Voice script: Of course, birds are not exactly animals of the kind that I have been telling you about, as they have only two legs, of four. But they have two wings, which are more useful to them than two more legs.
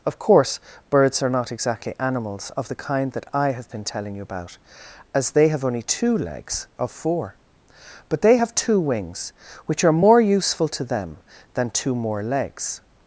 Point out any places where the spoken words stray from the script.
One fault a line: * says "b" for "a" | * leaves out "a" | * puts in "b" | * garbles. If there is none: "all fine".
all fine